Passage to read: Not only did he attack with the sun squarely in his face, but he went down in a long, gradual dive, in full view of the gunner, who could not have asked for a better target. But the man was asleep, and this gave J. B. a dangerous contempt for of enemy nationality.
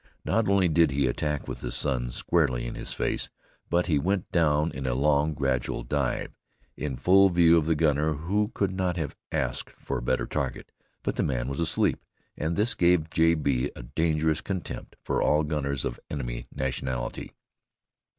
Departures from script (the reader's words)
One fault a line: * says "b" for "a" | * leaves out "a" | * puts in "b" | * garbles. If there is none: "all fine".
* puts in "all gunners"